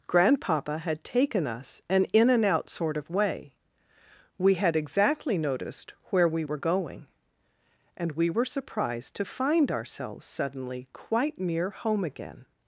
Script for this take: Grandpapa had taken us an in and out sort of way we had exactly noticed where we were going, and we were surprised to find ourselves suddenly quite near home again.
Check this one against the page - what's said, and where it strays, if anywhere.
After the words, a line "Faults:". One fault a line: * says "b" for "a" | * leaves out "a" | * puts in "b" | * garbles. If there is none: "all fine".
Grandpapa had taken us an in and out sort of way we had exactly noticed where we were going, and we were surprised to find ourselves suddenly quite near home again.
Faults:
all fine